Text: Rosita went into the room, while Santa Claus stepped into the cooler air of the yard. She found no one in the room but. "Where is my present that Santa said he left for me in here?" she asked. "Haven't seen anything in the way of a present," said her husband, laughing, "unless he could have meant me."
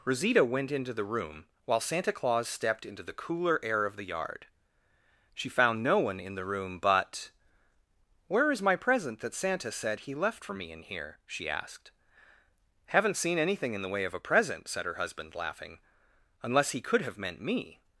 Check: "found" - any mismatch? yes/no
no